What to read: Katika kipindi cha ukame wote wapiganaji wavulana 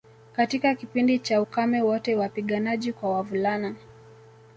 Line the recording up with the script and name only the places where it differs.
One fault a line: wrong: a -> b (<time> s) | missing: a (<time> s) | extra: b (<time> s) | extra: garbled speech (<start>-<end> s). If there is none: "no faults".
extra: kwa (2.9 s)